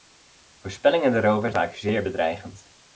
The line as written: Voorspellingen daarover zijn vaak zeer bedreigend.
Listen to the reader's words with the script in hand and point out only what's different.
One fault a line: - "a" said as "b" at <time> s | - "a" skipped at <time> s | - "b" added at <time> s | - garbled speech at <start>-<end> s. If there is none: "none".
- "zijn" skipped at 1.5 s